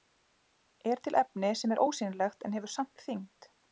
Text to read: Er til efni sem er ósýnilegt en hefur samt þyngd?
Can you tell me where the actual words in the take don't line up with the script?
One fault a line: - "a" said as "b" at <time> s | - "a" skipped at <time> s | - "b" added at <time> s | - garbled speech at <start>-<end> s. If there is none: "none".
none